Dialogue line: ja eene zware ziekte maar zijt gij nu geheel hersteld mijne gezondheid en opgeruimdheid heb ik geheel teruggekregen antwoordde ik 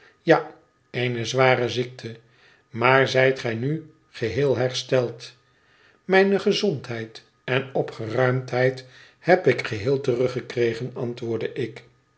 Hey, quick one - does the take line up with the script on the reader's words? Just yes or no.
yes